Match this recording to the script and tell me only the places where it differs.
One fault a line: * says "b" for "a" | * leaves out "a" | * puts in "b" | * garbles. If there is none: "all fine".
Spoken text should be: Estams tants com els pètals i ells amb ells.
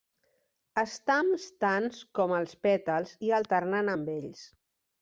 * says "alternant" for "ells"